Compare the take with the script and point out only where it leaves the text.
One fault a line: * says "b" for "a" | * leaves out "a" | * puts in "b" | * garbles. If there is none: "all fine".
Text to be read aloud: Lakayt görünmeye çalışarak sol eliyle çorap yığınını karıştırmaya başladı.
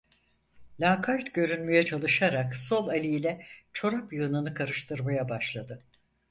all fine